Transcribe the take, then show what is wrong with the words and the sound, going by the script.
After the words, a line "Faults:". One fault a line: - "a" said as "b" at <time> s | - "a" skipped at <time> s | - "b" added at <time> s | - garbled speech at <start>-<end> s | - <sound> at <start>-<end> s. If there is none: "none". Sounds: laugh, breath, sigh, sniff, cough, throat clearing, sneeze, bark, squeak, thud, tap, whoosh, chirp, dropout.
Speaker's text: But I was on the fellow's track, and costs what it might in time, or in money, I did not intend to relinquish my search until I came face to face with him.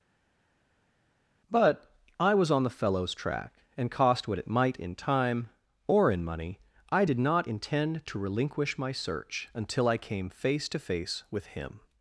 But I was on the fellow's track, and cost what it might in time, or in money, I did not intend to relinquish my search until I came face to face with him.
Faults:
- "costs" said as "cost" at 3.9 s